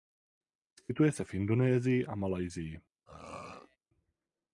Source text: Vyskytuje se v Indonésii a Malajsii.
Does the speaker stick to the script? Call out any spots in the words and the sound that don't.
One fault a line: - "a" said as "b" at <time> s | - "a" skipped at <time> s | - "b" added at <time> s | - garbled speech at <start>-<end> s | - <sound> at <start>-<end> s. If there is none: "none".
- throat clearing at 3.1-3.8 s